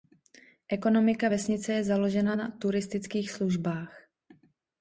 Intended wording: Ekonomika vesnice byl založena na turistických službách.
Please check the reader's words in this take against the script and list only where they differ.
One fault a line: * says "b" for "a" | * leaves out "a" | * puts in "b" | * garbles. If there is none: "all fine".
* says "je" for "byl"